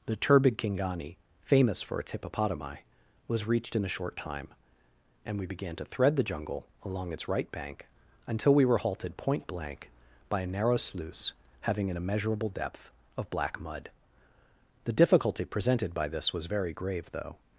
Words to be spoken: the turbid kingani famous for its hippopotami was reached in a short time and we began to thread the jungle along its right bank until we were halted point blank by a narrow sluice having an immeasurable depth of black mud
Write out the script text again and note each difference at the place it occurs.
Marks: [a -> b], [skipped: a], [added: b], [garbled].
the turbid kingani famous for its hippopotami was reached in a short time and we began to thread the jungle along its right bank until we were halted point blank by a narrow sluice having an immeasurable depth of black mud [added: the difficulty presented by this was very grave though]